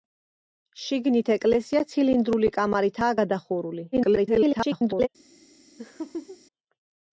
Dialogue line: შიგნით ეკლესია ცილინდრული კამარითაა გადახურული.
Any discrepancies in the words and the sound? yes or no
yes